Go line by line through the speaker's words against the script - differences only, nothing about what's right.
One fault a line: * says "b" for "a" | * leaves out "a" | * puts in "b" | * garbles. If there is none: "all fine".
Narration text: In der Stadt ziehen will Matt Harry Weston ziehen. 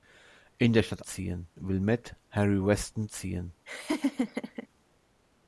all fine